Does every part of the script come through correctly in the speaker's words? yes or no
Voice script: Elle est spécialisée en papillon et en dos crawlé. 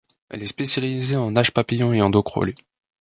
no